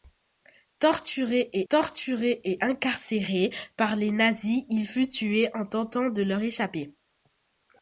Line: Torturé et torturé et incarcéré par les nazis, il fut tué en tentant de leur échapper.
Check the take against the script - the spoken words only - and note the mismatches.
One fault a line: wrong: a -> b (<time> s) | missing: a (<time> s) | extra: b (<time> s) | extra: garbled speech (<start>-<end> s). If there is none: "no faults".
no faults